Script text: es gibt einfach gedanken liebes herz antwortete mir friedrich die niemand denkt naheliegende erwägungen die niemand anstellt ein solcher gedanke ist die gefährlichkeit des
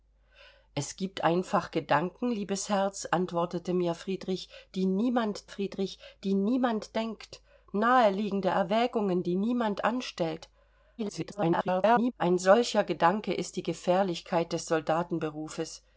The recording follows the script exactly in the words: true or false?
false